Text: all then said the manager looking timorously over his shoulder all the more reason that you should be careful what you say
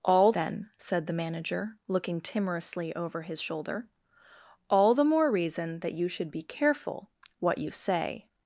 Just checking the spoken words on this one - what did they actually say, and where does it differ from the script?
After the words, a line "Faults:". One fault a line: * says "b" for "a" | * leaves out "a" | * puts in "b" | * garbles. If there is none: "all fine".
all then said the manager looking timorously over his shoulder all the more reason that you should be careful what you say
Faults:
all fine